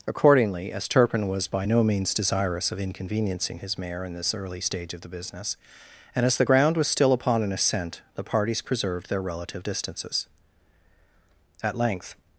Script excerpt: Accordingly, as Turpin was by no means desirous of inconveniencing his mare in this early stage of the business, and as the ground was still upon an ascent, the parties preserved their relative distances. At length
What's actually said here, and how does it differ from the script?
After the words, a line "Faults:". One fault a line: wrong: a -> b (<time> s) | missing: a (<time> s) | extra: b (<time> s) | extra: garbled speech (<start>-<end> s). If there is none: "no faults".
Accordingly, as Turpin was by no means desirous of inconveniencing his mare in this early stage of the business, and as the ground was still upon an ascent, the parties preserved their relative distances. At length
Faults:
no faults